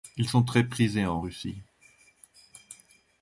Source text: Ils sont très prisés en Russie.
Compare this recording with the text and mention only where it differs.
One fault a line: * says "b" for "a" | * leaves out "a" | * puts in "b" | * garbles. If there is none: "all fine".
all fine